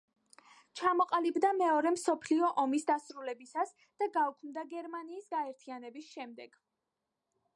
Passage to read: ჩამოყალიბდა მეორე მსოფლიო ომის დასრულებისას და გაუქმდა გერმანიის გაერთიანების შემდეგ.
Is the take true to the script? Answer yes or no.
yes